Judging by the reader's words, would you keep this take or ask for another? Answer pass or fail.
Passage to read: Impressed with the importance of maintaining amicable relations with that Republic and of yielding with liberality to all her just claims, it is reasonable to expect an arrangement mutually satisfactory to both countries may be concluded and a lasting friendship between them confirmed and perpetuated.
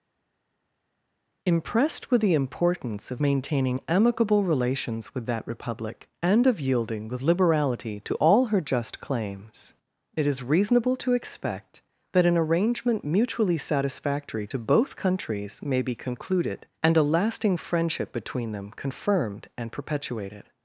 fail